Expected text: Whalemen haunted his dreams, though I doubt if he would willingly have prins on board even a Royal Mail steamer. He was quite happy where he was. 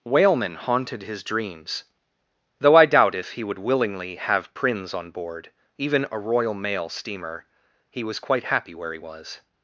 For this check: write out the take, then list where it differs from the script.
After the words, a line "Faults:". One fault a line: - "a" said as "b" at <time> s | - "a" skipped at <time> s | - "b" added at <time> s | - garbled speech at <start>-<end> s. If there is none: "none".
Whalemen haunted his dreams, though I doubt if he would willingly have prins on board even a Royal Mail steamer. He was quite happy where he was.
Faults:
none